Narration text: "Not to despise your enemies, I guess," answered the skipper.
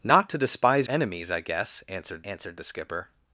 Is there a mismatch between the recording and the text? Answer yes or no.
yes